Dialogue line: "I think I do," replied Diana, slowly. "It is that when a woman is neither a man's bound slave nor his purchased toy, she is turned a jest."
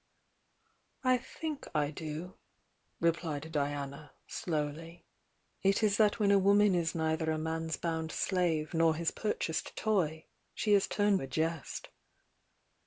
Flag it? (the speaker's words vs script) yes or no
no